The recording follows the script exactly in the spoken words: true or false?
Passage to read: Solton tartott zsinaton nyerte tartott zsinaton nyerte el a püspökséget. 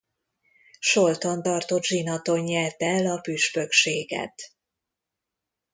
false